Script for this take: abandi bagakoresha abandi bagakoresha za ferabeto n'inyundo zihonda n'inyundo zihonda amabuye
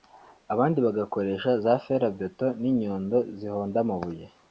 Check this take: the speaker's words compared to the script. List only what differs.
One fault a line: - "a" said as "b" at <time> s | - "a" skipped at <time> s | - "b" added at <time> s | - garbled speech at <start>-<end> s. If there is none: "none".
- "abandi bagakoresha" skipped at 1.5 s
- "n'inyundo zihonda" skipped at 3.8 s